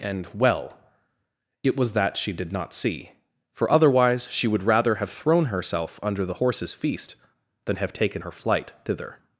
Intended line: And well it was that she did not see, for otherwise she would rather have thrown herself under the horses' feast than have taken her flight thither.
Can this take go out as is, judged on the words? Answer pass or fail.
pass